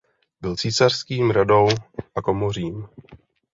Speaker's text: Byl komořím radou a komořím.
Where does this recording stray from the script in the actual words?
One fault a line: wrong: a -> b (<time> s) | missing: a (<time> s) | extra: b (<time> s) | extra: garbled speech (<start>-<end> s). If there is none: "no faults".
wrong: komořím -> císařským (0.5 s)